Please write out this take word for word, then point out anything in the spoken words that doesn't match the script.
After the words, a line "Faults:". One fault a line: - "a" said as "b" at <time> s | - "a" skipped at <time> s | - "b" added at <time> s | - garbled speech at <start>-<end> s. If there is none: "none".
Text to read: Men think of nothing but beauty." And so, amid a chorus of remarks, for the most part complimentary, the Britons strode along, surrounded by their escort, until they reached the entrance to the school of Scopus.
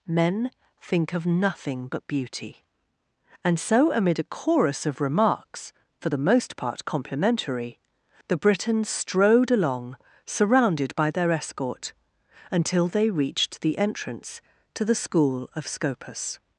Men think of nothing but beauty." And so, amid a chorus of remarks, for the most part complimentary, the Britons strode along, surrounded by their escort, until they reached the entrance to the school of Scopus.
Faults:
none